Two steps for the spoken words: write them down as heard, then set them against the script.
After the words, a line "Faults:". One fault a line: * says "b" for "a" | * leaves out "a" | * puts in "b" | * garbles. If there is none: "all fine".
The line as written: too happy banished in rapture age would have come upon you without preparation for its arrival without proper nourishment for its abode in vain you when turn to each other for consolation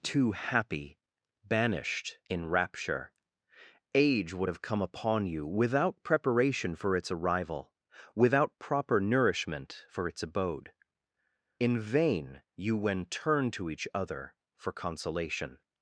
too happy banished in rapture age would have come upon you without preparation for its arrival without proper nourishment for its abode in vain you when turn to each other for consolation
Faults:
all fine